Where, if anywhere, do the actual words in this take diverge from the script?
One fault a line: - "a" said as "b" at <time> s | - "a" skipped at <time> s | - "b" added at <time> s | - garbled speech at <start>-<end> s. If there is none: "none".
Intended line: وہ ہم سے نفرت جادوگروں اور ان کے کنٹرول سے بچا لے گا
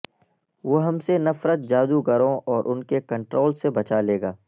none